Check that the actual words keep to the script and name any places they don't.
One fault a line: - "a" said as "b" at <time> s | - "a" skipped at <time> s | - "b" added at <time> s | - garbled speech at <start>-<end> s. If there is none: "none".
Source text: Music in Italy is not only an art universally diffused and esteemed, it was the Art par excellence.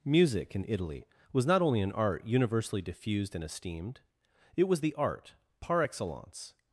- "is" said as "was" at 1.3 s